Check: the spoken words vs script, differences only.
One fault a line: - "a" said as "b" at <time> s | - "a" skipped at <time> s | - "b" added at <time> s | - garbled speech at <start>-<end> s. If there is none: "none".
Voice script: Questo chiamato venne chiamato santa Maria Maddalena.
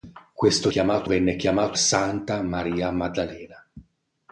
none